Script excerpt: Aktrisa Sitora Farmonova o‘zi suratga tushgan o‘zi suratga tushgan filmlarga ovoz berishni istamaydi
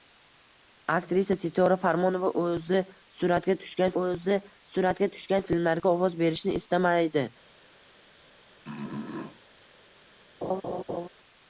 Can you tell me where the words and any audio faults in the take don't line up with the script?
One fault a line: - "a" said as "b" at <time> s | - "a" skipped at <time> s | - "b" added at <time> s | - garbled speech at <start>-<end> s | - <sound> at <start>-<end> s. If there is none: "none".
- throat clearing at 8.6-9.4 s
- laugh at 10.4-11.1 s